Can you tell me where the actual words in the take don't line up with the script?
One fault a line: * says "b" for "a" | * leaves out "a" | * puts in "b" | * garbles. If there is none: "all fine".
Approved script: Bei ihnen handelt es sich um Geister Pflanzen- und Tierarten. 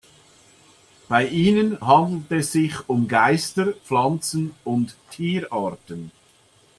all fine